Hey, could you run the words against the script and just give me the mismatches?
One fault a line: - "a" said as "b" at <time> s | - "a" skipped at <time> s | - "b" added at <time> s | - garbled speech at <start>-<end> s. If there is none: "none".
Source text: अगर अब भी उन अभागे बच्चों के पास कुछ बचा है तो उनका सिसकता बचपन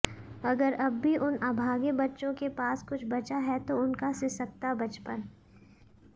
none